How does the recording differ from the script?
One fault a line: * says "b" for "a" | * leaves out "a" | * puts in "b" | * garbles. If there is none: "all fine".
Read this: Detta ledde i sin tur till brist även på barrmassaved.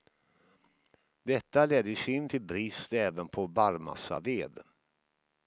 * leaves out "tur"